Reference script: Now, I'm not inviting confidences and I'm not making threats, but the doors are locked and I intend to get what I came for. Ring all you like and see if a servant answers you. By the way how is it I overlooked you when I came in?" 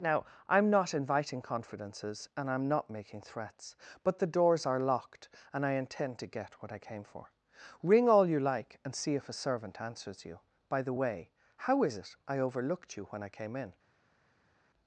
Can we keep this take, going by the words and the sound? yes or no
yes